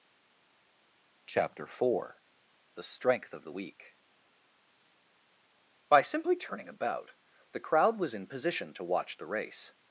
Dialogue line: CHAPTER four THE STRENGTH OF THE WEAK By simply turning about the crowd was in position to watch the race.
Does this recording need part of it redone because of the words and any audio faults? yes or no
no